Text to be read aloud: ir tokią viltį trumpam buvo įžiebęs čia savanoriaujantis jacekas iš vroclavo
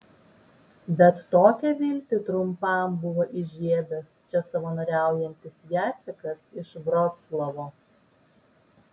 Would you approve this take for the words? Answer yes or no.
no